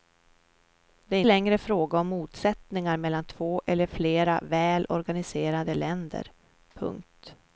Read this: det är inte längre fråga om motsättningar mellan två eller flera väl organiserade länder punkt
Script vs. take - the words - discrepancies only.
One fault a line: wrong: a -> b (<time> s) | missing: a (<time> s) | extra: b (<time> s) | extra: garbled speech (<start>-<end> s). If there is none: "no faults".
missing: inte (1.2 s)